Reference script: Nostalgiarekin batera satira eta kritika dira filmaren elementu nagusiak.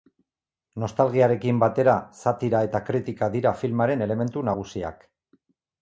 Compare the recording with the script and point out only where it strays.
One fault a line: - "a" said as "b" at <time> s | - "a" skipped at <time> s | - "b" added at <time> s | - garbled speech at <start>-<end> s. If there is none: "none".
none